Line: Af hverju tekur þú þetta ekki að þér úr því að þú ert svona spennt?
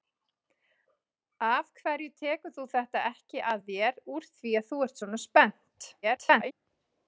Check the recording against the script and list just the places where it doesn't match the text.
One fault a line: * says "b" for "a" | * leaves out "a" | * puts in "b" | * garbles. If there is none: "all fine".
* garbles